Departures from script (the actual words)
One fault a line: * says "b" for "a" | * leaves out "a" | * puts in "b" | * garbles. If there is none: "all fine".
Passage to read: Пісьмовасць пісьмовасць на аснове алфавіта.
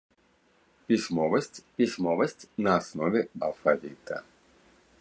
all fine